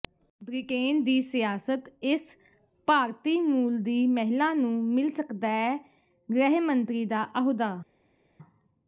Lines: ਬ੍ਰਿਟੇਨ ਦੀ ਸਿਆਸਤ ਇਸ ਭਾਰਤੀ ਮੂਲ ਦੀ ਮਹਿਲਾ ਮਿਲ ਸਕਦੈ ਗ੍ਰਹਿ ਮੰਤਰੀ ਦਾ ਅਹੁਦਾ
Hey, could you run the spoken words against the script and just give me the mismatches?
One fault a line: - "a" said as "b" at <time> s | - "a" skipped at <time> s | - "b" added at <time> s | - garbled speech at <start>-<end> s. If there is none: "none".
- "ਨੂੰ" added at 4.5 s